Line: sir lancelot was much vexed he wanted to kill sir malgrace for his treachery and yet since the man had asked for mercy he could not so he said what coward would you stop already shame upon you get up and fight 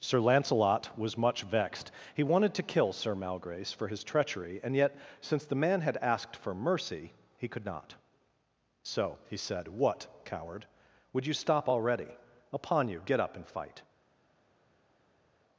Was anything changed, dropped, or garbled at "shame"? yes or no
yes